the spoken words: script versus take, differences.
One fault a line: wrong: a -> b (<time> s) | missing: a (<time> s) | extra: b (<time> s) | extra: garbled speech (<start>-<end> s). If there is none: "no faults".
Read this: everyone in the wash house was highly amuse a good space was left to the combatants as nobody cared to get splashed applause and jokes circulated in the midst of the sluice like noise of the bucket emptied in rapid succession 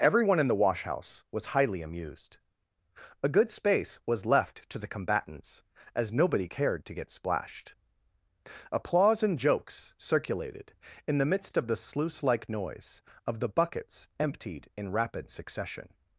wrong: amuse -> amused (1.8 s)
wrong: bucket -> buckets (13.5 s)